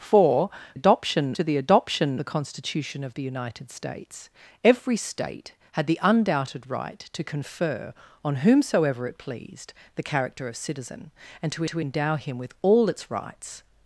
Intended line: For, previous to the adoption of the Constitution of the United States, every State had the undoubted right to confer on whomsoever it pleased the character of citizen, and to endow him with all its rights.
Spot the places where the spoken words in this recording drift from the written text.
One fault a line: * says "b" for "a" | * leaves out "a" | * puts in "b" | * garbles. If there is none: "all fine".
* says "adoption" for "previous"
* leaves out "of"
* puts in "to"